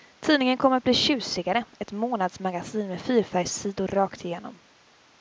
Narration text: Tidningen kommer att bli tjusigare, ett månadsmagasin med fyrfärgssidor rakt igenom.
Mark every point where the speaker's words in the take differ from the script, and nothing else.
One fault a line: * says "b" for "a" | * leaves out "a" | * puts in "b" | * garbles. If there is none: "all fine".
all fine